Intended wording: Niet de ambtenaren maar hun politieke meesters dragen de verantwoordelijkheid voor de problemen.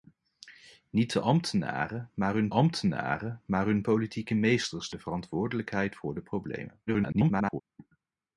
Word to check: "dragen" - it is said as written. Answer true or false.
false